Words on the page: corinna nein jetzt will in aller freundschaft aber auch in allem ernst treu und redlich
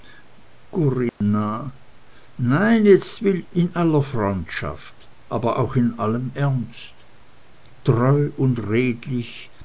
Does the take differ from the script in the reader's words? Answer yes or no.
no